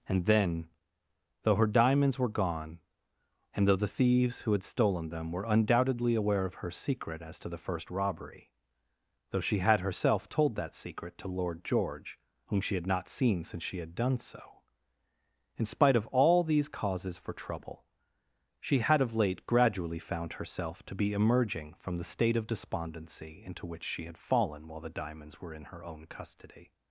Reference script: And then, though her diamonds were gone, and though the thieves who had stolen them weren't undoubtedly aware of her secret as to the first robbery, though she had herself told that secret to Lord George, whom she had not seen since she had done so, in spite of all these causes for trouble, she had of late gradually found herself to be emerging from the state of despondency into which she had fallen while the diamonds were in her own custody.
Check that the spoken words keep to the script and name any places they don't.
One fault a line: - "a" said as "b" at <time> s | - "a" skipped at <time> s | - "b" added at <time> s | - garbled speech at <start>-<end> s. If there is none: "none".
- "weren't" said as "were" at 5.3 s